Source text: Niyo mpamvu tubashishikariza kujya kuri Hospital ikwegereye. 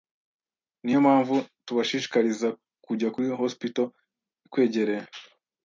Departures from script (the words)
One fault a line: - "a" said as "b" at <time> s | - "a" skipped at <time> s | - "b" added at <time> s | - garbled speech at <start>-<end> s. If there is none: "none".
none